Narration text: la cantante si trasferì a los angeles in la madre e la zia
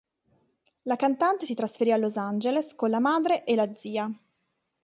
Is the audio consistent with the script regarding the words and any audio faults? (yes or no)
no